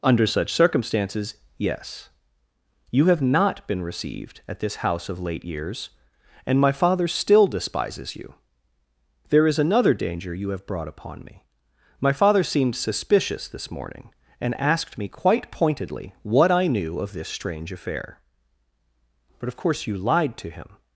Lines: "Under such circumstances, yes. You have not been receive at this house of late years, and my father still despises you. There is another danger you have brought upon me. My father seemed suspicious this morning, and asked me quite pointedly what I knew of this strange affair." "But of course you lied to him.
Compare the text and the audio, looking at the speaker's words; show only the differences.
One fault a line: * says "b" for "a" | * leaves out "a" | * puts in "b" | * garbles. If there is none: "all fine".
* says "received" for "receive"